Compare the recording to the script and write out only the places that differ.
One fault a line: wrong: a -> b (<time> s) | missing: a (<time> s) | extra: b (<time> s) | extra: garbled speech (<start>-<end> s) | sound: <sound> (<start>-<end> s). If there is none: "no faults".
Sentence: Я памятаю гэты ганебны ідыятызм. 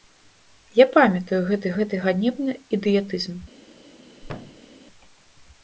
extra: гэты (1.8 s)
sound: thud (4.2-4.7 s)